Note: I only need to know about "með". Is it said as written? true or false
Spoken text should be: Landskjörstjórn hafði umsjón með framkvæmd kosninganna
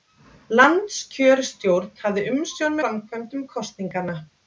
false